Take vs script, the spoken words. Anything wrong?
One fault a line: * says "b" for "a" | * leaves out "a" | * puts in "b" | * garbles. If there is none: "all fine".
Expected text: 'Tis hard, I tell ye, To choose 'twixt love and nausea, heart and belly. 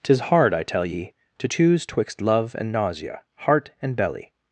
all fine